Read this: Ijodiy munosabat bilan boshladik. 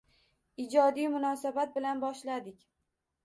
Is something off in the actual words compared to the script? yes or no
no